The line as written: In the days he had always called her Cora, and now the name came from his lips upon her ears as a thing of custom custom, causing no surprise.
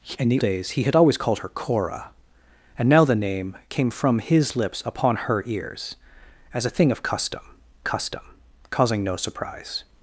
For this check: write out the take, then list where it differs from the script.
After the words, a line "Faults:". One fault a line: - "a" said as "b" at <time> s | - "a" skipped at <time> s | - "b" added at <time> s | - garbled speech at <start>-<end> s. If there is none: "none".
In the days he had always called her Cora, and now the name came from his lips upon her ears as a thing of custom custom, causing no surprise.
Faults:
none